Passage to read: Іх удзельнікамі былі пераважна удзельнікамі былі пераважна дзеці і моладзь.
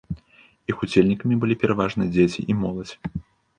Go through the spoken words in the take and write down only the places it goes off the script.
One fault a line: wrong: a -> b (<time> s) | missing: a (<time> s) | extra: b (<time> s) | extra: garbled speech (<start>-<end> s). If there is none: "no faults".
missing: удзельнікамі былі пераважна (2.1 s)